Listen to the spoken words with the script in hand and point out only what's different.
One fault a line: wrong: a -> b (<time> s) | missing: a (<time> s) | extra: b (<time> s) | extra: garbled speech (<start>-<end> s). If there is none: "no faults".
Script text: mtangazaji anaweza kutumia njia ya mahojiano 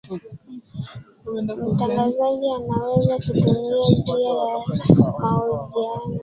no faults